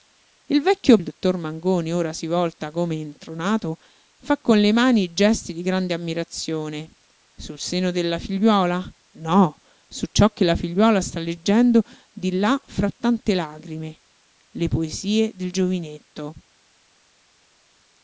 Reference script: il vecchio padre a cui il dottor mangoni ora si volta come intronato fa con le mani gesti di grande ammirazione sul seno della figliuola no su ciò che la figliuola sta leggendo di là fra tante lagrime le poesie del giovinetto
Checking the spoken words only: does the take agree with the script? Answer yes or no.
no